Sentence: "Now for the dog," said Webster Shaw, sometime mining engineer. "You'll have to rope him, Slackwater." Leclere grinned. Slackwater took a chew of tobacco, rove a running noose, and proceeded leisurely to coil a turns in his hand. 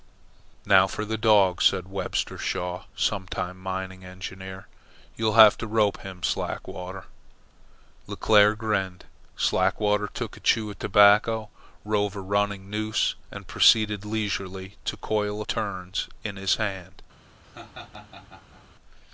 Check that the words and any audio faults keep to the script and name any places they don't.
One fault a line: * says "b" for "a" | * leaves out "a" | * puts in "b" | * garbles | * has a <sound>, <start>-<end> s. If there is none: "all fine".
* has a laugh, 17.4-18.7 s